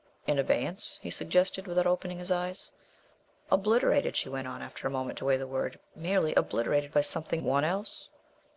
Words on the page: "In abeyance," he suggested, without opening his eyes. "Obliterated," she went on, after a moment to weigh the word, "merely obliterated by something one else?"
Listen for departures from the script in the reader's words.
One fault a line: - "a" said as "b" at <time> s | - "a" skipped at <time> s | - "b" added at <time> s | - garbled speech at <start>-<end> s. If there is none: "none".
none